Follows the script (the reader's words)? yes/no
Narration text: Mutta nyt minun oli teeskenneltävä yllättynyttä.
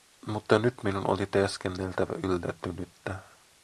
yes